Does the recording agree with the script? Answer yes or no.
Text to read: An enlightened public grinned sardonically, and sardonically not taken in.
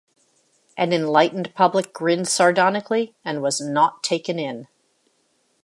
no